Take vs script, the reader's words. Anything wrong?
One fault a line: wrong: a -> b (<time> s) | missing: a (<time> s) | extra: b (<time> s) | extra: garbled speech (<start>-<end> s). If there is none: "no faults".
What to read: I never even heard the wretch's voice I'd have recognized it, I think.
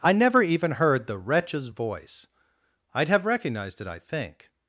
no faults